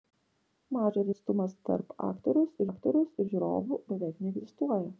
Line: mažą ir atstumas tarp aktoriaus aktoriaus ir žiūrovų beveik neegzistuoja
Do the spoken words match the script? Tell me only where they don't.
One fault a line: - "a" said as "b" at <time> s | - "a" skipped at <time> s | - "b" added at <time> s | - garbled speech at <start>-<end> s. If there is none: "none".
none